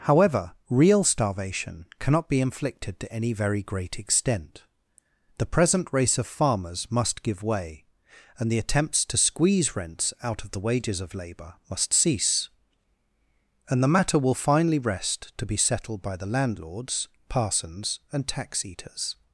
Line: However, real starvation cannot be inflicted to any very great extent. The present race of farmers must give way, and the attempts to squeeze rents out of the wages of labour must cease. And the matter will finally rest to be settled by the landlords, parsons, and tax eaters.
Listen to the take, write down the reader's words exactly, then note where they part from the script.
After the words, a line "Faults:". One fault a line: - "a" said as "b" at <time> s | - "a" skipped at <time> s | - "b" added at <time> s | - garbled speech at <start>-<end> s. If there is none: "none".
However, real starvation cannot be inflicted to any very great extent. The present race of farmers must give way, and the attempts to squeeze rents out of the wages of labour must cease. And the matter will finally rest to be settled by the landlords, parsons, and tax eaters.
Faults:
none